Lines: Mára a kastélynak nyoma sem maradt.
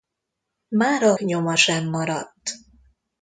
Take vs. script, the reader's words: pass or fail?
fail